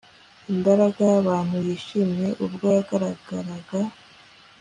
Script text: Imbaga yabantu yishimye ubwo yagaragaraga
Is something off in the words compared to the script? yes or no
no